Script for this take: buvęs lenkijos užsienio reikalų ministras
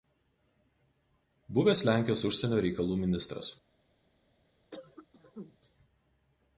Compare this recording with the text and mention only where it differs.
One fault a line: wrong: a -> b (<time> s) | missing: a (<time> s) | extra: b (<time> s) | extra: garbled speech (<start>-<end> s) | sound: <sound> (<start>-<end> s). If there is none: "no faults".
sound: cough (4.7-5.6 s)